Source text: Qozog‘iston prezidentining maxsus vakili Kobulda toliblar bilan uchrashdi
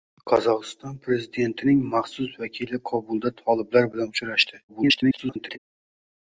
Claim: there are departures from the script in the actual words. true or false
true